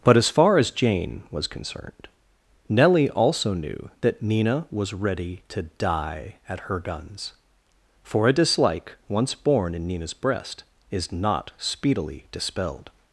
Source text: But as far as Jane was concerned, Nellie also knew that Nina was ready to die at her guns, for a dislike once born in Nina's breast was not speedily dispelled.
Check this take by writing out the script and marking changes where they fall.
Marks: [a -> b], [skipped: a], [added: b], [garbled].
But as far as Jane was concerned, Nellie also knew that Nina was ready to die at her guns, for a dislike once born in Nina's breast [was -> is] not speedily dispelled.